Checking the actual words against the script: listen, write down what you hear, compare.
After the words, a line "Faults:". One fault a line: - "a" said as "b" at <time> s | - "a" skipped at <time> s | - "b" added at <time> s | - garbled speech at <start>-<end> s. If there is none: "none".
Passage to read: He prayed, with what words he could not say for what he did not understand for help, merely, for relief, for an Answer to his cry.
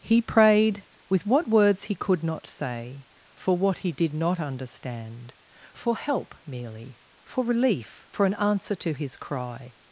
He prayed, with what words he could not say for what he did not understand for help, merely, for relief, for an Answer to his cry.
Faults:
none